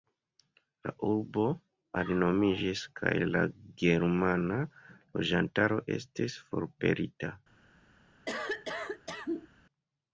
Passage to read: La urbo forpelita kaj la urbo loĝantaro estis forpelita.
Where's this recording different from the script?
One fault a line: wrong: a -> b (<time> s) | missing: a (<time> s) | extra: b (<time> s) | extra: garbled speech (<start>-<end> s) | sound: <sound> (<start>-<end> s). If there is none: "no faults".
wrong: forpelita -> alinomiĝis (2.0 s)
wrong: urbo -> germana (3.8 s)
sound: cough (8.3-9.5 s)